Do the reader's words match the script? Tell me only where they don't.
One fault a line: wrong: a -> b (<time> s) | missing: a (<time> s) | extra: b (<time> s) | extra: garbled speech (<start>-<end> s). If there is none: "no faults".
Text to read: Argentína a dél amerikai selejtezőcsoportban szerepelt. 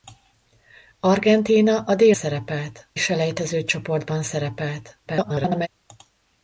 wrong: amerikai -> szerepelt (2.1 s)
extra: garbled speech (5.1-5.7 s)